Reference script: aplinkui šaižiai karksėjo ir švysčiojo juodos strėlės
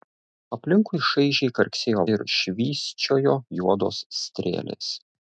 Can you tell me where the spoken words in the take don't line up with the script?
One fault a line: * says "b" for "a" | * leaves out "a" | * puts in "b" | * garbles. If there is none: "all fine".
all fine